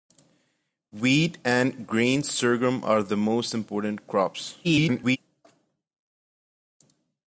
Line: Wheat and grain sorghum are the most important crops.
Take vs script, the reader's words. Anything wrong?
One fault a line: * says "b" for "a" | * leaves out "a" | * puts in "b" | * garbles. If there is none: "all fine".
* garbles